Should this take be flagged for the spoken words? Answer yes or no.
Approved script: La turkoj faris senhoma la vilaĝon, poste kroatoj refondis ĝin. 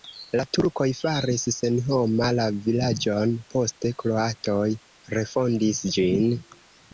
no